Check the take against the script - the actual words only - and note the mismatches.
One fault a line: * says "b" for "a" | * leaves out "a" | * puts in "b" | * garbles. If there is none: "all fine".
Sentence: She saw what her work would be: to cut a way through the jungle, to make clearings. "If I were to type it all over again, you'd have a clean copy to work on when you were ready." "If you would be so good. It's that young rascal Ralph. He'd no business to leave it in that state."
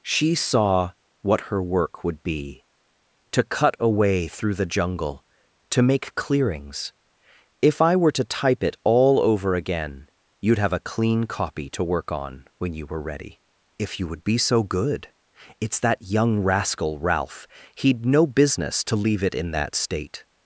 all fine